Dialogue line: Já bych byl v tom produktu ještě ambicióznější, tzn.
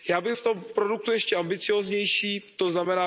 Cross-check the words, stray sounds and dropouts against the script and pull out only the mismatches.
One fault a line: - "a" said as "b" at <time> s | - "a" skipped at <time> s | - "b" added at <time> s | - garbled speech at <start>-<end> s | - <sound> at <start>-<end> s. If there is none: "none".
- "byl" skipped at 0.3 s